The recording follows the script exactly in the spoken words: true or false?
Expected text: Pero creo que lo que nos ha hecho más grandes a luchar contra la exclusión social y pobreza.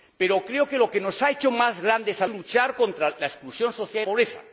true